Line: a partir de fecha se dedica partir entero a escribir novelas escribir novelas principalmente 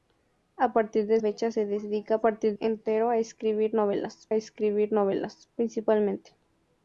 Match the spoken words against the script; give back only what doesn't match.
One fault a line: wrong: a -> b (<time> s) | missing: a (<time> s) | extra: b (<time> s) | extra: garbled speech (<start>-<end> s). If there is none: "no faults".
no faults